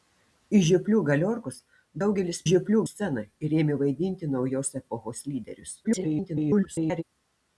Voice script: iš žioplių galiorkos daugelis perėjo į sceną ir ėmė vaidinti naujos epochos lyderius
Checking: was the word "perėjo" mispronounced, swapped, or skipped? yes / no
yes